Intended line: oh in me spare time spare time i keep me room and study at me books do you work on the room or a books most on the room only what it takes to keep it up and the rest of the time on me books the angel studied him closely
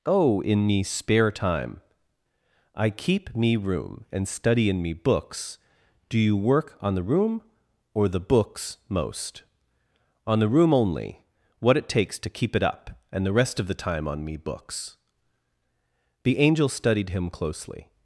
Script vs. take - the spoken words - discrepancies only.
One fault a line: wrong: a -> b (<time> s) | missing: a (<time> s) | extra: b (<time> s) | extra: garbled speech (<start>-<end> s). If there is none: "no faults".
missing: spare time (1.8 s)
wrong: at -> in (4.7 s)
wrong: a -> the (8.1 s)